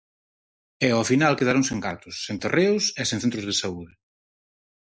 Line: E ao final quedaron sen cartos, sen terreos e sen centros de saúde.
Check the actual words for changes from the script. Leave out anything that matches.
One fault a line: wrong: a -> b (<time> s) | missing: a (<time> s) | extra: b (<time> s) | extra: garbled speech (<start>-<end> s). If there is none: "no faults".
no faults